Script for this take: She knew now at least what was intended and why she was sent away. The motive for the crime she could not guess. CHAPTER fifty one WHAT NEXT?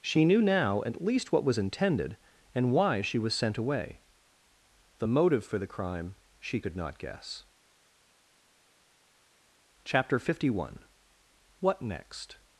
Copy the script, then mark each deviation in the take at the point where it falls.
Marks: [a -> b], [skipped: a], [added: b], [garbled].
She knew now at least what was intended and why she was sent away. The motive for the crime she could not guess. CHAPTER fifty one WHAT NEXT?